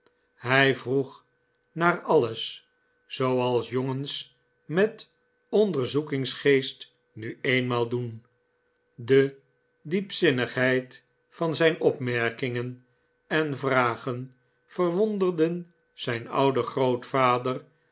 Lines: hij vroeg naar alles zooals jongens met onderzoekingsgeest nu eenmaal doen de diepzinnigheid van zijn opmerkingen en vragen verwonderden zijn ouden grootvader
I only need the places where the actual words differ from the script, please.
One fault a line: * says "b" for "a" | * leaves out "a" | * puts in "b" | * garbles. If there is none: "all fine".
all fine